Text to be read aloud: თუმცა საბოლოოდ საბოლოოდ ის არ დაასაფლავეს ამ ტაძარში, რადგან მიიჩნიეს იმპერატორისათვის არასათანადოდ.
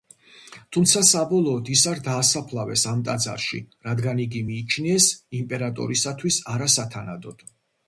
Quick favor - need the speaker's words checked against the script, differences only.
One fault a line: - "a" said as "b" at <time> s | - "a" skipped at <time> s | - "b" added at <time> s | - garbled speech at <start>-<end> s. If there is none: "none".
- "საბოლოოდ" skipped at 1.7 s
- "იგი" added at 4.3 s